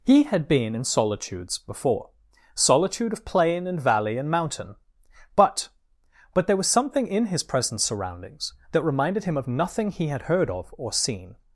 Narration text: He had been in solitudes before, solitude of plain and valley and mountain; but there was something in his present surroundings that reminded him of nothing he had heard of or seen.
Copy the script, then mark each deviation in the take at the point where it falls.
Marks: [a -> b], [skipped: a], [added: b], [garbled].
He had been in solitudes before, solitude of plain and valley and mountain; but [added: but] there was something in his present surroundings that reminded him of nothing he had heard of or seen.